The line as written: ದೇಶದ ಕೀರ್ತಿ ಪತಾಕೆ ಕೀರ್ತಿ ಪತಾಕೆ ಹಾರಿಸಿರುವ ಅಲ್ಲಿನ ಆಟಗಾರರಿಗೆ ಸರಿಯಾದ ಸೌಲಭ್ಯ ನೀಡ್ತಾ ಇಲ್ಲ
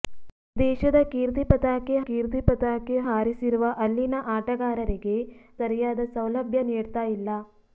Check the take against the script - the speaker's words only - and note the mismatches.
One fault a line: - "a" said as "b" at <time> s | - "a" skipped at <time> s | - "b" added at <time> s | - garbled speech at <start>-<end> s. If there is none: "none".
none